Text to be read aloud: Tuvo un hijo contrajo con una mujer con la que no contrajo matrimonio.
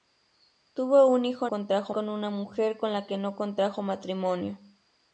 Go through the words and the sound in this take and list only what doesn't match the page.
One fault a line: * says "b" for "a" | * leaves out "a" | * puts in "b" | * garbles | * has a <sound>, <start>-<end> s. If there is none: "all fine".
all fine